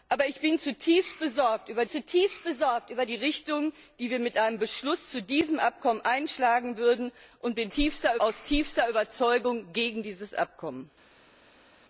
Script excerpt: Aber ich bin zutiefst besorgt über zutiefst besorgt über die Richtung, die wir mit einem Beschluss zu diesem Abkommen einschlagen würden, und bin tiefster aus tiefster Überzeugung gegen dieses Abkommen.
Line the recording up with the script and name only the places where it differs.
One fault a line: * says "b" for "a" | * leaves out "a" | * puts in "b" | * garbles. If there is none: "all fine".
all fine